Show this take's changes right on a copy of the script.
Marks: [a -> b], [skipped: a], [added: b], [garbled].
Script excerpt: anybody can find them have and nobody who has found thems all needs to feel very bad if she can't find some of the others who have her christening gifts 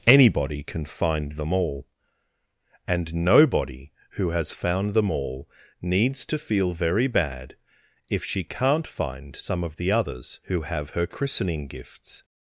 anybody can find them [have -> all] and nobody who has found [thems -> them] all needs to feel very bad if she can't find some of the others who have her christening gifts